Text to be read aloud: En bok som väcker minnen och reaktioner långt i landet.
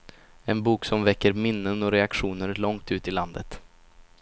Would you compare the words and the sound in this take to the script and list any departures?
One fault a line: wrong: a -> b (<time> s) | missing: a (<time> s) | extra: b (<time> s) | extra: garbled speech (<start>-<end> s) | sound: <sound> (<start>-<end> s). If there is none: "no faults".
extra: ut (2.9 s)